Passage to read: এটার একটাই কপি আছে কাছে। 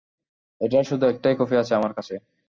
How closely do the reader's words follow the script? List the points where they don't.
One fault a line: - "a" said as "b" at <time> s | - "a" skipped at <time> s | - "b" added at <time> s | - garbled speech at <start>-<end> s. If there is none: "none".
- "শুধু" added at 0.8 s
- "আমার" added at 1.8 s